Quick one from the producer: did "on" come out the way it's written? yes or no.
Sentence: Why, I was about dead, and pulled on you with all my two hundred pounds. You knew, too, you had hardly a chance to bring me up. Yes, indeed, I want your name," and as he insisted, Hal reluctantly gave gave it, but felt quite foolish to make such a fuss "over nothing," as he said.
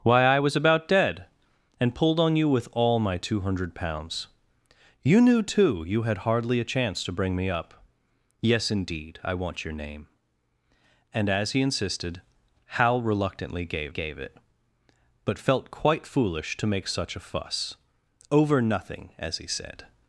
yes